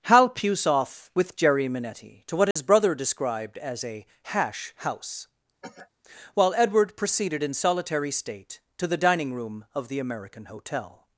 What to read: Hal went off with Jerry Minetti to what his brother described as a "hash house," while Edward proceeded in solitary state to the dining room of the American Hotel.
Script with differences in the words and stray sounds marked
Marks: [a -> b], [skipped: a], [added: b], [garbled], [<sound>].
Hal [went -> puce] off with Jerry Minetti to what his [dropout] brother described as a "hash house," [cough] while Edward proceeded in solitary state to the dining room of the American Hotel.